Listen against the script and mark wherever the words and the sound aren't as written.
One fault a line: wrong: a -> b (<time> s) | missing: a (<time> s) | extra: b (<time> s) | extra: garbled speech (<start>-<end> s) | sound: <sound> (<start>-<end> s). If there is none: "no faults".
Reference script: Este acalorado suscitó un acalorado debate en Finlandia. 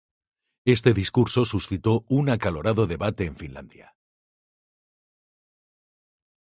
wrong: acalorado -> discurso (0.9 s)